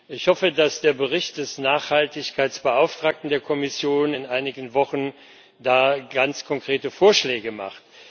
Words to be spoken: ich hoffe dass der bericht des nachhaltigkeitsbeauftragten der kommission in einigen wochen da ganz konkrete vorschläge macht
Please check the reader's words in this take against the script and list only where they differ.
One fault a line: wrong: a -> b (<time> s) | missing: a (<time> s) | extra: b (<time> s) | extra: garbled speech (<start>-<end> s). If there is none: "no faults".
no faults